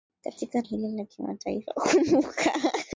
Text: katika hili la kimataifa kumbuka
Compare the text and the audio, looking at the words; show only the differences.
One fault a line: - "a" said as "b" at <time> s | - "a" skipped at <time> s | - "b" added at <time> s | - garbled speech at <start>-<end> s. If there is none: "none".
none